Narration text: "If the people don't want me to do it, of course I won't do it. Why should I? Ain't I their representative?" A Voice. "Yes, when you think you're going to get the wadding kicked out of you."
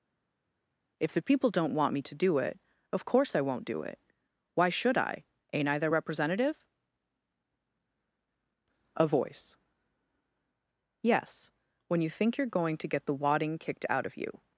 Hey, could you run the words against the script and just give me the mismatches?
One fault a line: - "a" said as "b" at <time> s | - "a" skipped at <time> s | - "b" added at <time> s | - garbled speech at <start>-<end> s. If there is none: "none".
none